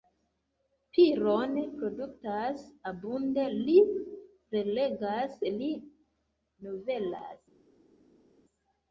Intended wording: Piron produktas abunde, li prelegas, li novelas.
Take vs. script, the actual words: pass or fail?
pass